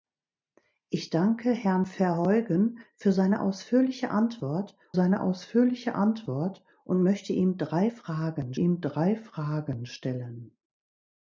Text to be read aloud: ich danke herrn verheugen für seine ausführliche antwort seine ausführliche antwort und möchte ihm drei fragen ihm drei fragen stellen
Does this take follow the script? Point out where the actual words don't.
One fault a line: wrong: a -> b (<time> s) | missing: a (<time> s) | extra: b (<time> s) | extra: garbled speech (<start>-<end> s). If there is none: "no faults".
no faults